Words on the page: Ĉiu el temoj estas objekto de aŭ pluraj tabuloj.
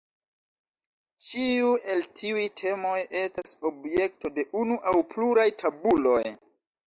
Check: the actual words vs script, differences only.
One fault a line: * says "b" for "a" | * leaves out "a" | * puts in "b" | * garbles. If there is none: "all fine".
* puts in "tiuj"
* puts in "unu"